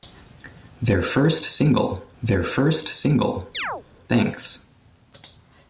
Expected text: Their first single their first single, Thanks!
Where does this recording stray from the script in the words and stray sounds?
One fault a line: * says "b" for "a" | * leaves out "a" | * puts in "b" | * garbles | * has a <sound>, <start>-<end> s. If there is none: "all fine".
* has a chirp, 3.5-3.8 s